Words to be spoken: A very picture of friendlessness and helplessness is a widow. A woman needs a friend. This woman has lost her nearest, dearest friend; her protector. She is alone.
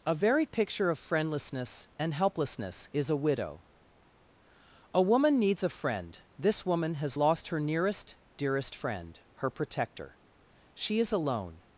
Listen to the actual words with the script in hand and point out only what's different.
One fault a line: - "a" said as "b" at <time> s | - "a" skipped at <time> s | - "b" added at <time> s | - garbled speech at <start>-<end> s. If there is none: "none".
none